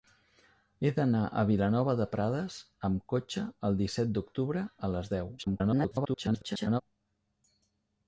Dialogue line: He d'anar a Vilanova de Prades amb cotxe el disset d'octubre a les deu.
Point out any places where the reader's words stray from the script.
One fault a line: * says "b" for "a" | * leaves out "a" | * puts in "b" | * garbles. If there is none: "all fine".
* garbles